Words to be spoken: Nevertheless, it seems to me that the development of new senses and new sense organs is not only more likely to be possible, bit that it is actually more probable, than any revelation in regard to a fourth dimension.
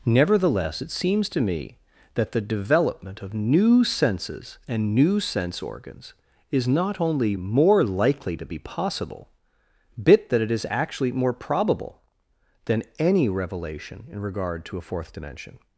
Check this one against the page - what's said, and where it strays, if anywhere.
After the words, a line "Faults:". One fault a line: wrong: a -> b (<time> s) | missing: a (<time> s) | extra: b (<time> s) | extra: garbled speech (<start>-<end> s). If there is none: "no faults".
Nevertheless, it seems to me that the development of new senses and new sense organs is not only more likely to be possible, bit that it is actually more probable, than any revelation in regard to a fourth dimension.
Faults:
no faults